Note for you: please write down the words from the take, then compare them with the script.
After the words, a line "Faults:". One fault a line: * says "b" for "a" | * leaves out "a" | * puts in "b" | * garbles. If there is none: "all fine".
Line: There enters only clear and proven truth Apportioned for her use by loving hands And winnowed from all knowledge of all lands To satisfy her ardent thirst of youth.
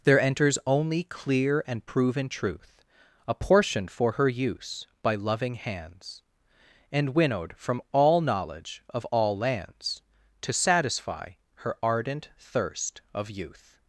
There enters only clear and proven truth Apportioned for her use by loving hands And winnowed from all knowledge of all lands To satisfy her ardent thirst of youth.
Faults:
all fine